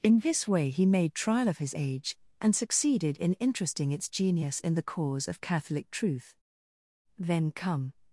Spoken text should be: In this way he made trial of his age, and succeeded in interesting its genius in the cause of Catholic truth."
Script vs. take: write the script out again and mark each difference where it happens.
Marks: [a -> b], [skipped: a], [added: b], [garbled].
In this way he made trial of his age, and succeeded in interesting its genius in the cause of Catholic truth." [added: Then come]